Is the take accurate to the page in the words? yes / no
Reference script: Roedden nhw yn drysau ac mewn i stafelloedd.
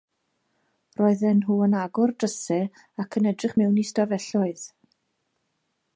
no